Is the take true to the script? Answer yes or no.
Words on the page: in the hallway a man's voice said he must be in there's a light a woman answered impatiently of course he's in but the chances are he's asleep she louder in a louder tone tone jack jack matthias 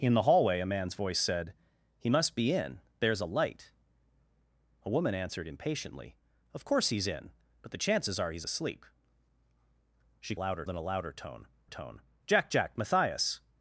yes